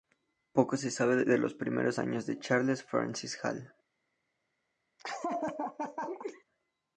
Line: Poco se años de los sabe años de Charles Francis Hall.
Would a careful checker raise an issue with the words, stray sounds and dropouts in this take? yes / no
yes